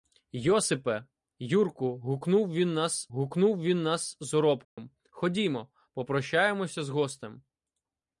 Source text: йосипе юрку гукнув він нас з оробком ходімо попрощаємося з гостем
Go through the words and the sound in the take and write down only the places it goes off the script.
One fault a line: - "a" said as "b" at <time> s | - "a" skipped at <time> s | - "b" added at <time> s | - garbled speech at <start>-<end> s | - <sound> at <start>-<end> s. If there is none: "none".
- "гукнув він нас" added at 3.1 s
- dropout at 4.6-4.8 s